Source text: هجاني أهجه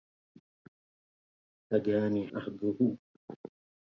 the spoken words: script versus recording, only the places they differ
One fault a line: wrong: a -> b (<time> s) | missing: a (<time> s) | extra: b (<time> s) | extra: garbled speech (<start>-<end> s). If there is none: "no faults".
no faults